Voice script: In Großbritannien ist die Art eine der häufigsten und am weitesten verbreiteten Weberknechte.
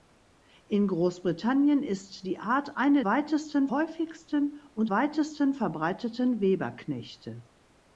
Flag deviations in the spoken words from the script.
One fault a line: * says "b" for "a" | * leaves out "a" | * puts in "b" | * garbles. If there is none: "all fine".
* says "weitesten" for "der"
* leaves out "am"